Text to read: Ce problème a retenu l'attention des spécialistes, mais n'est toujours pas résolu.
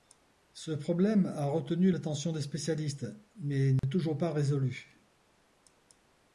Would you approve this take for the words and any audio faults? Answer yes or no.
no